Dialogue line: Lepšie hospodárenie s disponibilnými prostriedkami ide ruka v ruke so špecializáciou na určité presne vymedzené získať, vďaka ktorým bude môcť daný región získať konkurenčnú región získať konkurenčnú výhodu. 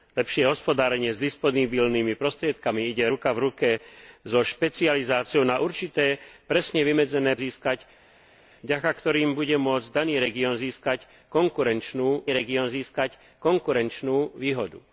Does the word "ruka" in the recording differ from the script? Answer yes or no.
no